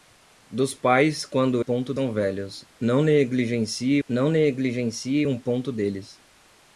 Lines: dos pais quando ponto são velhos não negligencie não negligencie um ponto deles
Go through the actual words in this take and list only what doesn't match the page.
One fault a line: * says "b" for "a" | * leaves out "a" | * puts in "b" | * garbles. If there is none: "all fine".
all fine